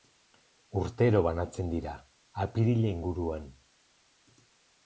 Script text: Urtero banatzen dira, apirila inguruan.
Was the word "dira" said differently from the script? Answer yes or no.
no